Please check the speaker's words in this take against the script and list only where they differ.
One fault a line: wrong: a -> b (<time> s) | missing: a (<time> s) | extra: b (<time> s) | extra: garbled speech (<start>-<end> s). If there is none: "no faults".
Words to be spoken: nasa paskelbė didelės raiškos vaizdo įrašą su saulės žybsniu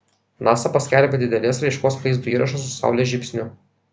no faults